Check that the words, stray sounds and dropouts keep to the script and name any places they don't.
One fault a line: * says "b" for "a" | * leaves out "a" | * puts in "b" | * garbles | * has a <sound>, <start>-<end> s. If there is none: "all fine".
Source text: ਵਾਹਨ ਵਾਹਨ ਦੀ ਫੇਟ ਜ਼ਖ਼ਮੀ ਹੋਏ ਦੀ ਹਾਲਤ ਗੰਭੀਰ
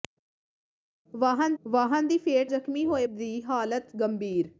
all fine